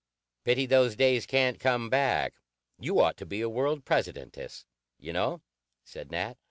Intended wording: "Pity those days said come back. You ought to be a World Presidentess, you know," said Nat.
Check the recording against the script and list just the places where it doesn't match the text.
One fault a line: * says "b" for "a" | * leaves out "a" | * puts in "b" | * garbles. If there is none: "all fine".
* says "can't" for "said"